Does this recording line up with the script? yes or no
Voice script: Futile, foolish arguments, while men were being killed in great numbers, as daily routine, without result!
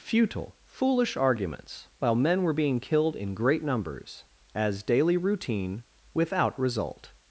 yes